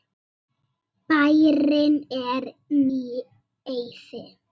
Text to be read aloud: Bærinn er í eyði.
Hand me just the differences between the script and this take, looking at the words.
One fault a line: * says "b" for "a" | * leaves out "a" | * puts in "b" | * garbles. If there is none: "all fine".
all fine